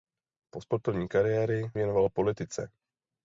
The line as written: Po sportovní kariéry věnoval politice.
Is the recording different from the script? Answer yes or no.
no